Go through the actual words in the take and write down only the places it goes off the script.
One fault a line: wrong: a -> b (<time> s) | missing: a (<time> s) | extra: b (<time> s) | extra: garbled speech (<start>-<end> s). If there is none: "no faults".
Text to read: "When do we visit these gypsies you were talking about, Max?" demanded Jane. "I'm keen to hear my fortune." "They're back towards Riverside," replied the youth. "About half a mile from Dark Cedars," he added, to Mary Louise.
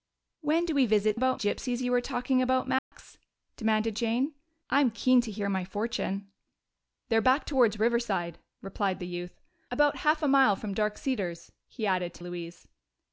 wrong: these -> about (1.1 s)
missing: Mary (12.2 s)